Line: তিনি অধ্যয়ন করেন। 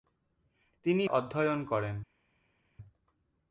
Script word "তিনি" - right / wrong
right